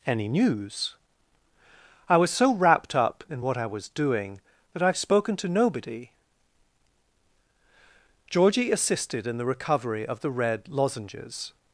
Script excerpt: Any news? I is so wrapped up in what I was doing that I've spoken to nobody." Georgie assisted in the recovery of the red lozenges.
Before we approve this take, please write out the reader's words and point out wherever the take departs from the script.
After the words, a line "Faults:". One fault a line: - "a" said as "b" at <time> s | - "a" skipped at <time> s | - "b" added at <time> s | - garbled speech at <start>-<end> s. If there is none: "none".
Any news? I was so wrapped up in what I was doing that I've spoken to nobody." Georgie assisted in the recovery of the red lozenges.
Faults:
- "is" said as "was" at 2.2 s